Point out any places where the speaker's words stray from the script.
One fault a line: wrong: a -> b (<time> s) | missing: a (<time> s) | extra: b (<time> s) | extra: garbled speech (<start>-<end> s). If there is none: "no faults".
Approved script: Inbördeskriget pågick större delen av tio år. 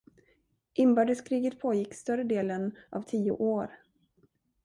no faults